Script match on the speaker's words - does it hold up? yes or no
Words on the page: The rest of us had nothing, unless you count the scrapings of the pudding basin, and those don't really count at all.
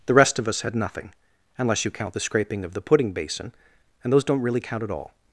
no